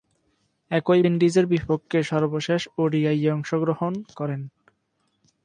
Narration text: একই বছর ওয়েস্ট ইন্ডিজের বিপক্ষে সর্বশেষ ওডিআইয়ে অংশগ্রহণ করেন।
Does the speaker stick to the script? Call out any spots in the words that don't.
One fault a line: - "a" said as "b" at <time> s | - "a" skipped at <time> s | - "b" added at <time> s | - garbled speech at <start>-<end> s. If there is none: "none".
- "বছর ওয়েস্ট" skipped at 1.0 s